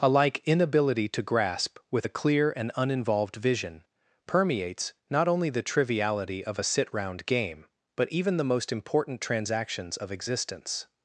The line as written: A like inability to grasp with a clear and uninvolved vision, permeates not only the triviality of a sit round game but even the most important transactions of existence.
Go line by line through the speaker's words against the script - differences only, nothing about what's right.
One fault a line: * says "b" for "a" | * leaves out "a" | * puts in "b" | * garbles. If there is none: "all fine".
all fine